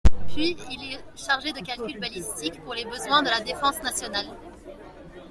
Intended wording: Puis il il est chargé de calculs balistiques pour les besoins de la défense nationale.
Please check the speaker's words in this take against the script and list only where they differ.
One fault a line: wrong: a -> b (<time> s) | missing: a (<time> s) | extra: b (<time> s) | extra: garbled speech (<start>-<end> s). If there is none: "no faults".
missing: il (0.9 s)